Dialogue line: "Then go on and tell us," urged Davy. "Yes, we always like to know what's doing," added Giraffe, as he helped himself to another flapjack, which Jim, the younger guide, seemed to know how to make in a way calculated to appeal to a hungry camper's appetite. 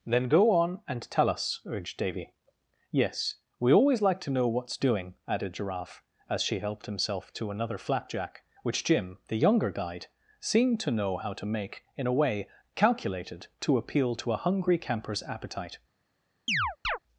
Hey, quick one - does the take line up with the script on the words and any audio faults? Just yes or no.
no